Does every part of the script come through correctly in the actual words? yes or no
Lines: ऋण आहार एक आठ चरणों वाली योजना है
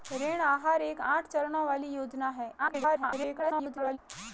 no